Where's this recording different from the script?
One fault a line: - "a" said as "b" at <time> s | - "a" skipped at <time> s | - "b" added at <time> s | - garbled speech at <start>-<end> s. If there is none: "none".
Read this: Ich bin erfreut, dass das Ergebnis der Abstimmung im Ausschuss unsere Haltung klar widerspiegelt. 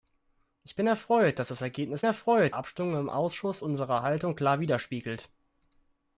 - "der" said as "erfreut" at 2.0 s